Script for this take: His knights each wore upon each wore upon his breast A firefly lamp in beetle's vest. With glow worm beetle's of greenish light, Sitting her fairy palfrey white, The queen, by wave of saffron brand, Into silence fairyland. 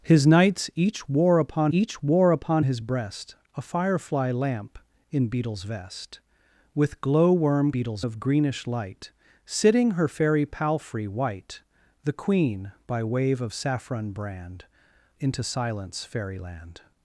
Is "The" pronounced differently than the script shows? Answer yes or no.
no